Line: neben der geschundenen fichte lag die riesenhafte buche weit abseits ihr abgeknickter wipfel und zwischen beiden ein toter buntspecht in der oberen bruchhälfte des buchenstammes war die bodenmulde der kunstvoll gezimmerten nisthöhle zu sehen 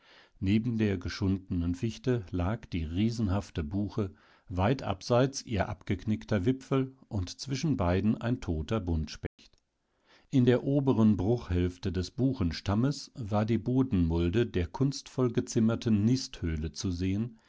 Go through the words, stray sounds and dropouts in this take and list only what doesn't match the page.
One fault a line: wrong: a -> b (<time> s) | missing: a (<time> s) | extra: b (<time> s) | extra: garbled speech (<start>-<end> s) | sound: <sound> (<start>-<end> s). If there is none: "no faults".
sound: dropout (9.3-9.4 s)